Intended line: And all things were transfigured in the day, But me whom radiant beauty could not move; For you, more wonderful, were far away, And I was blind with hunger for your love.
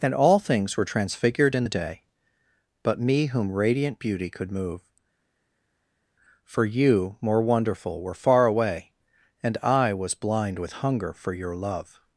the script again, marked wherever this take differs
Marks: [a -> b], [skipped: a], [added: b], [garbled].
And all things were transfigured in the day, But me whom radiant beauty could [skipped: not] move; For you, more wonderful, were far away, And I was blind with hunger for your love.